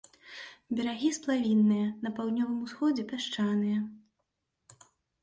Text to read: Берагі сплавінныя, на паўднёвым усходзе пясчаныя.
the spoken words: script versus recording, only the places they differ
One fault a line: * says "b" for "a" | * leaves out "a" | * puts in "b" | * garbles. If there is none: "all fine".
all fine